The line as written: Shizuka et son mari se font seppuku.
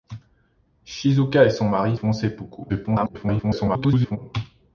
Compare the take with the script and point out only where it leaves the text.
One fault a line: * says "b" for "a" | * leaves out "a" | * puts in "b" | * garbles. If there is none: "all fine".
* leaves out "se"
* garbles